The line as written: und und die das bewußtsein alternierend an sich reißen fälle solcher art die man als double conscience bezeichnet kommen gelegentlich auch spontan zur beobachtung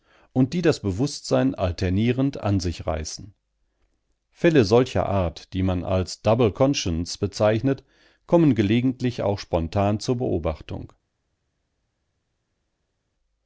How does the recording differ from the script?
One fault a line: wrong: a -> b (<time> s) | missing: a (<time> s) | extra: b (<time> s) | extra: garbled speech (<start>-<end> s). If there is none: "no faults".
missing: und (0.5 s)